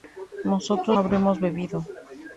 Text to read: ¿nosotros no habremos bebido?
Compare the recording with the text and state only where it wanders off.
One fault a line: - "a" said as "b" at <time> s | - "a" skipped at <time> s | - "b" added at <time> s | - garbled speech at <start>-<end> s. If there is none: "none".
- "no" skipped at 1.0 s